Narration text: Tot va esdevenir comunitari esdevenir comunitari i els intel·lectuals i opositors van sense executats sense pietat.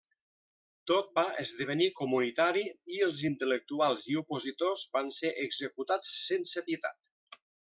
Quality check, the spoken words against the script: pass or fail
fail